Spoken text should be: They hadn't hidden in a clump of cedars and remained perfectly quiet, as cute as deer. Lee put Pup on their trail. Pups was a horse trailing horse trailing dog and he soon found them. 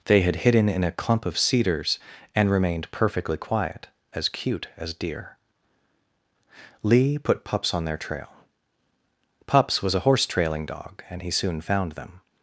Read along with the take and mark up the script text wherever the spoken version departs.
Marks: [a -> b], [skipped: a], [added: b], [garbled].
They [hadn't -> had] hidden in a clump of cedars and remained perfectly quiet, as cute as deer. Lee put [Pup -> Pups] on their trail. Pups was a horse trailing [skipped: horse trailing] dog and he soon found them.